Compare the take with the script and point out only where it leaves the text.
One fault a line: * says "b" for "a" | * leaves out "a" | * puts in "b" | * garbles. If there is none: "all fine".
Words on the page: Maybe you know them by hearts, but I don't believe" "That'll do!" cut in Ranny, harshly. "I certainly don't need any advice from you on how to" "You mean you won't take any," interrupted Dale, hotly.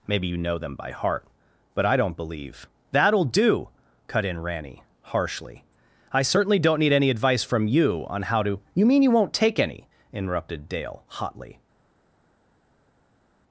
* says "heart" for "hearts"